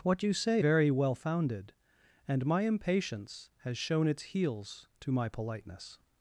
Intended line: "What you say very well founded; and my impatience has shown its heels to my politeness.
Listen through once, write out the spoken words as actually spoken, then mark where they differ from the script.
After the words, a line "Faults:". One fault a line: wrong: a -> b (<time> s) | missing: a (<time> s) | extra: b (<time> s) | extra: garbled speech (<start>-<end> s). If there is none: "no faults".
"What you say very well founded; and my impatience has shown its heels to my politeness.
Faults:
no faults